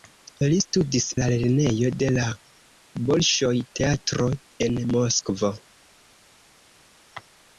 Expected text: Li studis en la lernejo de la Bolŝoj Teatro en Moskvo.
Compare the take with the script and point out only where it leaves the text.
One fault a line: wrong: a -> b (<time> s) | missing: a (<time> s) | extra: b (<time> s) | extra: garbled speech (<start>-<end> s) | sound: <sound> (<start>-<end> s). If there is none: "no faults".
missing: en (1.1 s)